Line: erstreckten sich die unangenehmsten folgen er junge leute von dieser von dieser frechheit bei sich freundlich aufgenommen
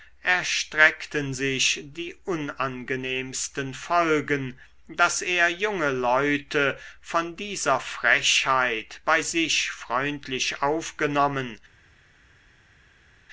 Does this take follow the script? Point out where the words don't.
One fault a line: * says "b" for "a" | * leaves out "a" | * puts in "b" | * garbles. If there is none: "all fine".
* puts in "daß"
* leaves out "von dieser"